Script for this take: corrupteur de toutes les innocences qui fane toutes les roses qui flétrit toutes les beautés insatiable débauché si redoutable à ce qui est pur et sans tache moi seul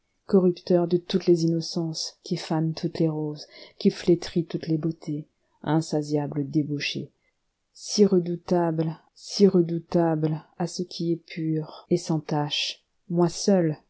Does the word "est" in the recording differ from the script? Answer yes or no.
no